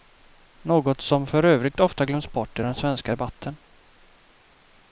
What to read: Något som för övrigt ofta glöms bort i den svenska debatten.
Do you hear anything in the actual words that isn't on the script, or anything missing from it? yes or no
no